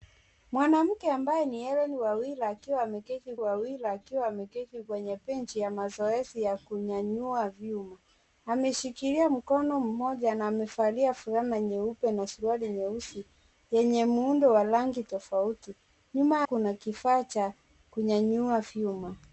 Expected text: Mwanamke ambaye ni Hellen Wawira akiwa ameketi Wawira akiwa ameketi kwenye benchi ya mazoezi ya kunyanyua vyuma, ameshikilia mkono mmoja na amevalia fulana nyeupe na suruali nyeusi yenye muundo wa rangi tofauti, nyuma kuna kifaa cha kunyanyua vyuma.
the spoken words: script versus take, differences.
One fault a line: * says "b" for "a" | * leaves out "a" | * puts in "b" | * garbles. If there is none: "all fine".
all fine